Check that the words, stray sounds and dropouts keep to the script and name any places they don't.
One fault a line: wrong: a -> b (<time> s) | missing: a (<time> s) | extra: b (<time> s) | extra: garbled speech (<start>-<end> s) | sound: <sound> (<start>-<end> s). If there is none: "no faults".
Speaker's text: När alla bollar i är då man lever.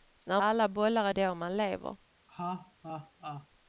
sound: laugh (2.3-3.5 s)